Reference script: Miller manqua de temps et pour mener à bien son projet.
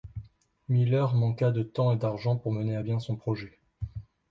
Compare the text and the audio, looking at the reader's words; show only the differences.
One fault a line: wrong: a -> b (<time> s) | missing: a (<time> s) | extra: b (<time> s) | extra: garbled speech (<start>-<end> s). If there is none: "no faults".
extra: d'argent (2.0 s)